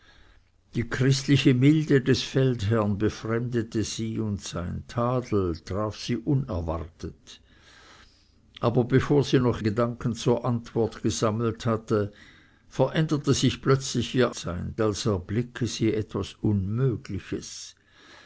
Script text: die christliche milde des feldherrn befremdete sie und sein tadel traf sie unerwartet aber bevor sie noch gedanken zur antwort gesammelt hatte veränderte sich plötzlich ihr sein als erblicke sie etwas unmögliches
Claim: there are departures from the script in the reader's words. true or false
false